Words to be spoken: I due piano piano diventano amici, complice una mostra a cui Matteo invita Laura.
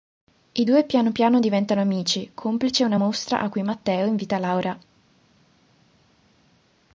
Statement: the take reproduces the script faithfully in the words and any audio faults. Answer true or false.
true